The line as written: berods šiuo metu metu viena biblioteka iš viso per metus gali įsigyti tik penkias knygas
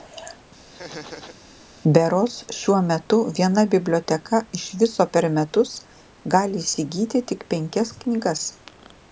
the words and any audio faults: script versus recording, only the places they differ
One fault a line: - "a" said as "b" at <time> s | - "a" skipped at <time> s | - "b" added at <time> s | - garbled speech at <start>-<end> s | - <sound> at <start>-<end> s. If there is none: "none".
- laugh at 0.7-1.4 s
- "metu" skipped at 3.2 s